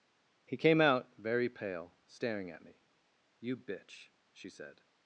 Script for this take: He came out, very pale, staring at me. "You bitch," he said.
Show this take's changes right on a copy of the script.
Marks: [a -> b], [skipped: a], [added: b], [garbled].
He came out, very pale, staring at me. "You bitch," [he -> she] said.